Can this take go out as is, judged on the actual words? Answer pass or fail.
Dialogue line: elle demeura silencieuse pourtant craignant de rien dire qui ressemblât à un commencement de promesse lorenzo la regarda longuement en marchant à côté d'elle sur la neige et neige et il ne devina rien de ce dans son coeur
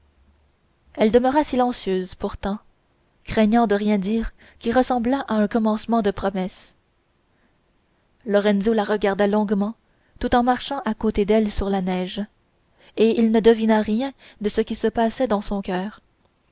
fail